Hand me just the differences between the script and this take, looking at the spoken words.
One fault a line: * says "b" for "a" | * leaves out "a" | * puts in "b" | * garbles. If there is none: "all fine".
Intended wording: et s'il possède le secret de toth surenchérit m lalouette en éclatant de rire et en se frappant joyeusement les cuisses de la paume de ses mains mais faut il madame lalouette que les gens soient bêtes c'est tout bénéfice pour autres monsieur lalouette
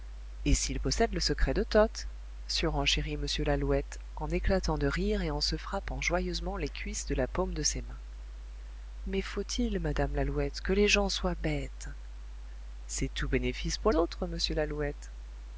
all fine